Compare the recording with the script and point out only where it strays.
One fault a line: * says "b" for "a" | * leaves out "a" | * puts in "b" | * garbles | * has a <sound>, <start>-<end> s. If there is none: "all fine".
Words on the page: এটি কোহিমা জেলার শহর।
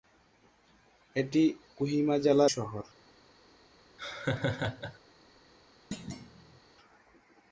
* has a laugh, 4.0-5.0 s
* has a thud, 5.9-6.6 s